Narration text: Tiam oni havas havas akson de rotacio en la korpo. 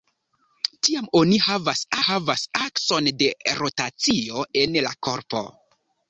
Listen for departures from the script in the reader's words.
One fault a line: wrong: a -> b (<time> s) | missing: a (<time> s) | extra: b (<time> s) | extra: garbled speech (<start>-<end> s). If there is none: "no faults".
no faults